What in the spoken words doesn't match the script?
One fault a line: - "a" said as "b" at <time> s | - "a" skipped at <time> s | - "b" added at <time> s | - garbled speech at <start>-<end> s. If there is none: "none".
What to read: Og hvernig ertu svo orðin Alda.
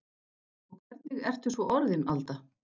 none